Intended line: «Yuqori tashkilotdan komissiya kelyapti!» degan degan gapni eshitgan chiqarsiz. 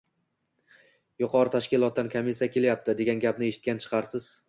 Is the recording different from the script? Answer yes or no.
yes